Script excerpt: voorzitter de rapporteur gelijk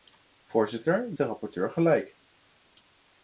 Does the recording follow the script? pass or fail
pass